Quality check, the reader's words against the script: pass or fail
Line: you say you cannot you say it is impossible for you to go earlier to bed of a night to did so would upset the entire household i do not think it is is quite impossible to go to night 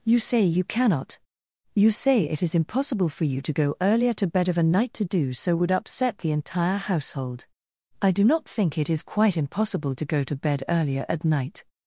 fail